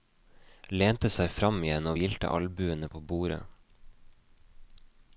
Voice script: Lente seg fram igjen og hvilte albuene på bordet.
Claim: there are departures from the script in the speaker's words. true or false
false